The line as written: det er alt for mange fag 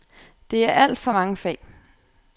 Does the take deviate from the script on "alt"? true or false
false